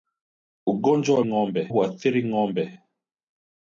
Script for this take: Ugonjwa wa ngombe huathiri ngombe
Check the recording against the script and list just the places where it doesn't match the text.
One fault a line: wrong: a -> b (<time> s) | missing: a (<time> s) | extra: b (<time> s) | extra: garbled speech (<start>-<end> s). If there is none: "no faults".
no faults